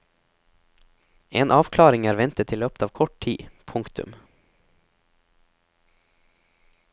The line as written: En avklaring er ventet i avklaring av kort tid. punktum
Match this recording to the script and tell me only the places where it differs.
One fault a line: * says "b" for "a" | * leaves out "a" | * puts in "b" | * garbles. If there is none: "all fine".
* says "løpet" for "avklaring"